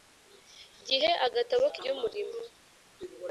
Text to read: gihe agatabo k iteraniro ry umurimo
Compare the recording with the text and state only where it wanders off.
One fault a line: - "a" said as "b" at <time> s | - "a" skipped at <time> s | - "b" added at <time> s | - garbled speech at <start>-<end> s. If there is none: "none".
- "iteraniro" skipped at 1.8 s